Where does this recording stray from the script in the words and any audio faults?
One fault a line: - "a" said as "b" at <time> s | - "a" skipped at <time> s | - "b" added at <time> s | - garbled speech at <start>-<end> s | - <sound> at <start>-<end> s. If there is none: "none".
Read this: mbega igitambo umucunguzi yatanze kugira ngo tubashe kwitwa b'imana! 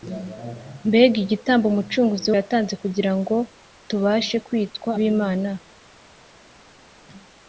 none